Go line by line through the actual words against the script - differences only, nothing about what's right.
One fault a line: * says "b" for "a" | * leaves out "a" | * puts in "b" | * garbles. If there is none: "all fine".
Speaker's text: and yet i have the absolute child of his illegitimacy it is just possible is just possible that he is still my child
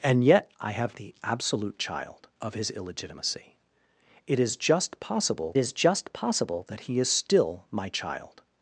all fine